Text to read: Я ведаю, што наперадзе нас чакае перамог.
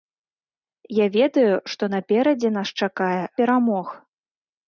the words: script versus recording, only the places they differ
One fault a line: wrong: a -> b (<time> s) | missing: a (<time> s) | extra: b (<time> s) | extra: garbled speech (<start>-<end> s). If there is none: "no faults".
no faults